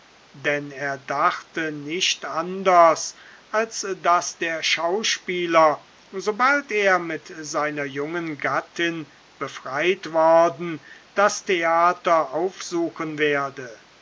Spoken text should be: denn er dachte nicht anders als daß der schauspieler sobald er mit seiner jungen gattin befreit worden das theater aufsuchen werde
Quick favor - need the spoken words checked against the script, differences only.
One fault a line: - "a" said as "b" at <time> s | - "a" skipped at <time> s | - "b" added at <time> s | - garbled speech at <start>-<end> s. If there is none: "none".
none